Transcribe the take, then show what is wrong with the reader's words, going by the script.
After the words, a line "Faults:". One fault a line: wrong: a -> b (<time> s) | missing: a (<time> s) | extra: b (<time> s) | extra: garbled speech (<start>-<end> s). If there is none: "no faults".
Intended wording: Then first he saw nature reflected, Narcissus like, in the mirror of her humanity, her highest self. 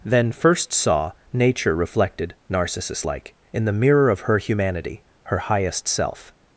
Then first saw nature reflected, Narcissus like, in the mirror of her humanity, her highest self.
Faults:
missing: he (0.7 s)